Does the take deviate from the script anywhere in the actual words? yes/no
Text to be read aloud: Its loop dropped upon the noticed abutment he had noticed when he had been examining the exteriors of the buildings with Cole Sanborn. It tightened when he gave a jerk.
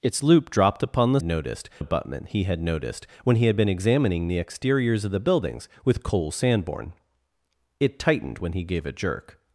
no